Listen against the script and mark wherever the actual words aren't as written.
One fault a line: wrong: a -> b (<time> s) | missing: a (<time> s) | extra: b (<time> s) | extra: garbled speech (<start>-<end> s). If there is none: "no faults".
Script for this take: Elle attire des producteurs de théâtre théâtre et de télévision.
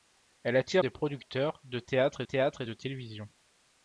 no faults